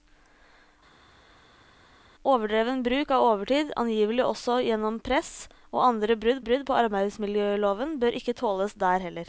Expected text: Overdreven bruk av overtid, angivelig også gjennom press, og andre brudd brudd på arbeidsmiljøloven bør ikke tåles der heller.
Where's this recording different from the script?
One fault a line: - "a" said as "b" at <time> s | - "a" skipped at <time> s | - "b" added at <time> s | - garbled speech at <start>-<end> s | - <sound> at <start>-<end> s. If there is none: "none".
none